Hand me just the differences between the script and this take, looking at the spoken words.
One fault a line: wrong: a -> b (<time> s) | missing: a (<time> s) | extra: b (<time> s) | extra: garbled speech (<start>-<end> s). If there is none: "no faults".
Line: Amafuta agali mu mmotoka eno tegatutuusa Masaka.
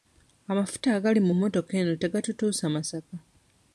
no faults